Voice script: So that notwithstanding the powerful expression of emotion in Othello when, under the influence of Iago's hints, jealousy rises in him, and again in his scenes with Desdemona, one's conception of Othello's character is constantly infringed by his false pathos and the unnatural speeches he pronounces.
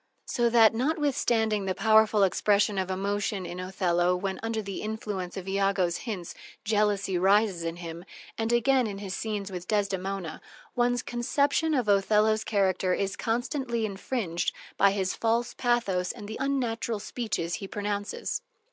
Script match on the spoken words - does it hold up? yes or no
yes